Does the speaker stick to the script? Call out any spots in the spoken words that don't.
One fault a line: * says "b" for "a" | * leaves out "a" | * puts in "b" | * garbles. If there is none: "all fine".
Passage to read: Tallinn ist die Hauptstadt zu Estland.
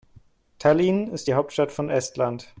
* says "von" for "zu"